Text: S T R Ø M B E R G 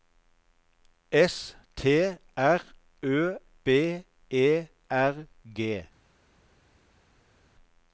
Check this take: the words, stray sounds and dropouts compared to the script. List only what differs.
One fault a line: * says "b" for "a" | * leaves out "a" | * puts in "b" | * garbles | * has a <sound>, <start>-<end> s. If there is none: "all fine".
* leaves out "M"